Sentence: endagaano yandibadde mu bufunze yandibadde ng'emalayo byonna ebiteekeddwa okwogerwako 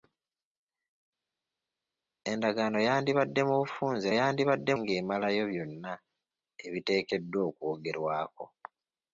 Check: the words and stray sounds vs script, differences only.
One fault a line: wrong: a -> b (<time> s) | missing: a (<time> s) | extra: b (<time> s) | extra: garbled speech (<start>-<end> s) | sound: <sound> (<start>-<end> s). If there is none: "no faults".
no faults